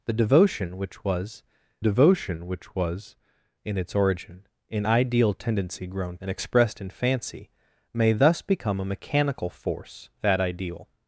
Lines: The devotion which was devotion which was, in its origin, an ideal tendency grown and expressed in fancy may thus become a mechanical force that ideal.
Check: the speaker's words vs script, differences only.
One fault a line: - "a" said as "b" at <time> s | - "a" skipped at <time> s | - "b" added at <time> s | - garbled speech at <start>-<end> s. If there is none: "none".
none